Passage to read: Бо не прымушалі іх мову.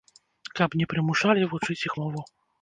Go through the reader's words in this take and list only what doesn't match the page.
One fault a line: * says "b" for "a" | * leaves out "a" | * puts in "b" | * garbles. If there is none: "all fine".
* says "Каб" for "Бо"
* puts in "вучыць"